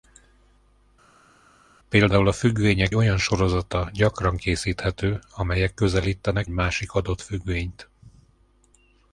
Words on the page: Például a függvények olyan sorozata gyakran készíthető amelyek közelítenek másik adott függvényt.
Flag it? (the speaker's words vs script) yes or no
no